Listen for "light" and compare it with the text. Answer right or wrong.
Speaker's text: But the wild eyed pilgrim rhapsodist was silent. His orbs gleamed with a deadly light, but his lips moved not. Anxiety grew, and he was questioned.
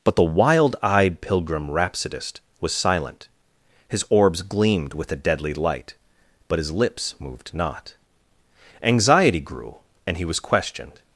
right